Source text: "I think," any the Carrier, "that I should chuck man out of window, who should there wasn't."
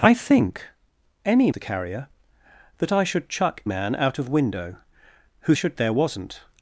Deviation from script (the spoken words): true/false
false